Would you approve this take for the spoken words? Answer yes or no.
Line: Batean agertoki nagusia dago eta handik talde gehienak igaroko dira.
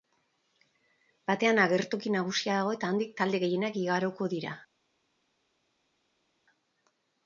yes